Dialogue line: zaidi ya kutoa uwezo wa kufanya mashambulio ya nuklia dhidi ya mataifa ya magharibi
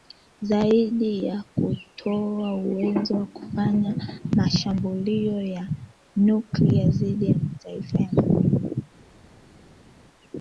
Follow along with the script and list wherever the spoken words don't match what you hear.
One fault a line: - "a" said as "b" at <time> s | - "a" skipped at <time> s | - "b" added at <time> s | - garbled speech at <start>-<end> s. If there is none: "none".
none